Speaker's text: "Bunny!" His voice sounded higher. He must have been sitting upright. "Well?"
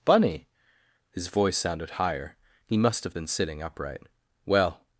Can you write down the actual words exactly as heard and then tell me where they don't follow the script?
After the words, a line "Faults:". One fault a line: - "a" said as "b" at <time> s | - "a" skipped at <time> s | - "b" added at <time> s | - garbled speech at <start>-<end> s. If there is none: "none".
"Bunny!" His voice sounded higher. He must have been sitting upright. "Well?"
Faults:
none